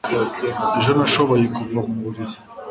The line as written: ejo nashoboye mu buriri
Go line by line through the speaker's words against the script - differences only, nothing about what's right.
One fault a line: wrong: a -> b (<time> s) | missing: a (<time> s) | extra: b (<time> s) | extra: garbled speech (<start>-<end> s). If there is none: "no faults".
extra: kuva (1.6 s)